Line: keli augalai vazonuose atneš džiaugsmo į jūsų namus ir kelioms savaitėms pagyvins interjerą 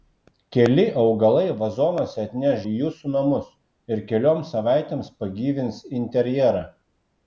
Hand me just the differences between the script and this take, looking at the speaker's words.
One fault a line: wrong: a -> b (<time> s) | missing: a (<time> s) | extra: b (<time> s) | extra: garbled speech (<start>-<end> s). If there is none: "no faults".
missing: džiaugsmo (2.6 s)